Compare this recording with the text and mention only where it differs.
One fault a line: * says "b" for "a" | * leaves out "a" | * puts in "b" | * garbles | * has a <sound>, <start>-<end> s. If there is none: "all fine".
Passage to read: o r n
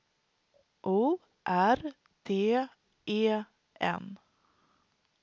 * puts in "d e"